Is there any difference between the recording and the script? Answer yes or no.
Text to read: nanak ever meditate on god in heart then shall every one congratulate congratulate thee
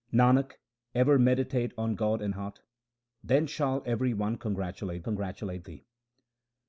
no